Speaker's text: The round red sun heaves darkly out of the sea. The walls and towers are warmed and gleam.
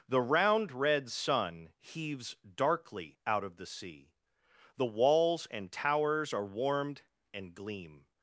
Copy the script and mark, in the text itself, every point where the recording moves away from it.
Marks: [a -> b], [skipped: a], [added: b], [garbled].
The round red sun heaves darkly out of the sea. The walls and towers are warmed and gleam.